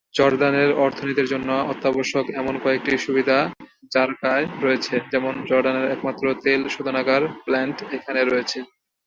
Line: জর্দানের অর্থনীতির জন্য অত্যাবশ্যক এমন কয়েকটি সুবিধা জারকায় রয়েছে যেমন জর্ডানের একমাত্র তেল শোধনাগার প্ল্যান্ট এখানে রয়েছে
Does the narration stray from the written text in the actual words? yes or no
no